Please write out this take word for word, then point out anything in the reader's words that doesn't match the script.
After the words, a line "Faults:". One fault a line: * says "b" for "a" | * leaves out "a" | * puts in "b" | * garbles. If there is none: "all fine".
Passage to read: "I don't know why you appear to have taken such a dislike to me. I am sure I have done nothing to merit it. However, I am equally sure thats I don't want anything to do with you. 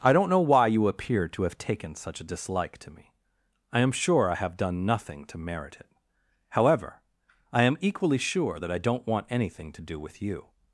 "I don't know why you appear to have taken such a dislike to me. I am sure I have done nothing to merit it. However, I am equally sure that I don't want anything to do with you.
Faults:
* says "that" for "thats"